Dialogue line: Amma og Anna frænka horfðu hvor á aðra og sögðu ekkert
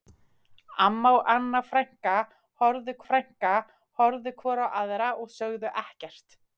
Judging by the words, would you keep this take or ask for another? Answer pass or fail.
fail